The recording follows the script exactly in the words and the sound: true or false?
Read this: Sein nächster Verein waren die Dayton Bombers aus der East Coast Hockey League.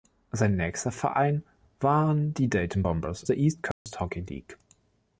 false